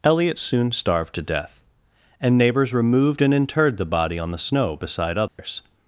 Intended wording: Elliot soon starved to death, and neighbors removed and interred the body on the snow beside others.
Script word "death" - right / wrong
right